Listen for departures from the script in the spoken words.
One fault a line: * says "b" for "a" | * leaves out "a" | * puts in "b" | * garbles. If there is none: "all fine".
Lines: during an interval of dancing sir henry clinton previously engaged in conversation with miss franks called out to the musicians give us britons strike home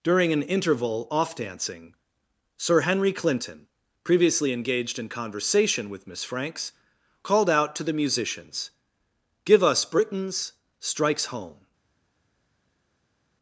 * says "off" for "of"
* says "strikes" for "strike"